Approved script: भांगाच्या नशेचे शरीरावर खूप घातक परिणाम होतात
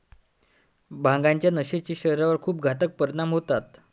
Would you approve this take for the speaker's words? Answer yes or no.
yes